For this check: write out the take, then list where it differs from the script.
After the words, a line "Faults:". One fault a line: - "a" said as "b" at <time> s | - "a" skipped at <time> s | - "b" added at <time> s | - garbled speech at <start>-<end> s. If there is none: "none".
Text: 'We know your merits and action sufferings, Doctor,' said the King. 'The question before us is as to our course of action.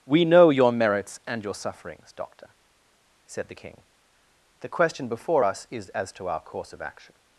'We know your merits and your sufferings, Doctor,' said the King. 'The question before us is as to our course of action.
Faults:
- "action" said as "your" at 1.4 s